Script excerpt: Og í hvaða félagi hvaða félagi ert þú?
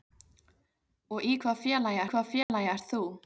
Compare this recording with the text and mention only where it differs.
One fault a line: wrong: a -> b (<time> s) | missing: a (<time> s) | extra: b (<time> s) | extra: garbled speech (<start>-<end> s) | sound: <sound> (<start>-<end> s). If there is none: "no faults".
sound: dropout (2.4-2.5 s)